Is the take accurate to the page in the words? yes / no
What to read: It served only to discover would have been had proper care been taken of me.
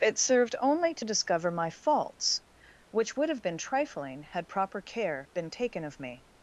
no